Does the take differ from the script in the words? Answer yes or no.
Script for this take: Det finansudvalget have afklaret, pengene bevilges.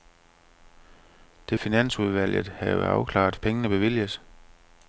no